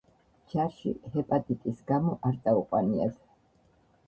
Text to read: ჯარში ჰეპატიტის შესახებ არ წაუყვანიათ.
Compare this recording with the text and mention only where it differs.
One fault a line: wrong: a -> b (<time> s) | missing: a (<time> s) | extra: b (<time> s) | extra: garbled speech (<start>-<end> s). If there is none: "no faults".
wrong: შესახებ -> გამო (1.9 s)